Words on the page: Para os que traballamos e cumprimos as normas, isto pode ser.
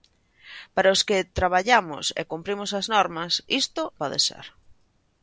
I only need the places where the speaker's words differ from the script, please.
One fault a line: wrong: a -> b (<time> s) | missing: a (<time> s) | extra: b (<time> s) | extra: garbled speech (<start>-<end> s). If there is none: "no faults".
no faults